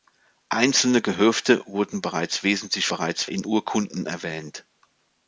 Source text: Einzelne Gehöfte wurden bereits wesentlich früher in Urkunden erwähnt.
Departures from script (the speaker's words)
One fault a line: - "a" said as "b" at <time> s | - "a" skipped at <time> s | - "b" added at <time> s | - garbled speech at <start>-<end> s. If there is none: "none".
- "früher" said as "bereits" at 2.9 s